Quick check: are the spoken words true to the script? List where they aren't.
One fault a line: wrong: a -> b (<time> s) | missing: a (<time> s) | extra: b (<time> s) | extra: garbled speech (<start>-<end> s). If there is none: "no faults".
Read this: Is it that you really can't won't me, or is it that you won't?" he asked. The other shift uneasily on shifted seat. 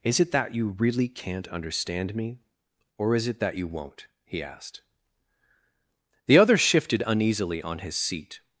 wrong: won't -> understand (1.5 s)
wrong: shift -> shifted (6.6 s)
wrong: shifted -> his (7.8 s)